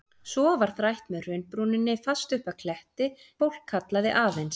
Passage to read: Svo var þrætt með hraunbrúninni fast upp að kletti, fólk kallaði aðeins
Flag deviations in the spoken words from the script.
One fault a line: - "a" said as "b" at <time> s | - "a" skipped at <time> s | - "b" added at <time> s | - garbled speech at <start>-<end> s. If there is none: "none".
none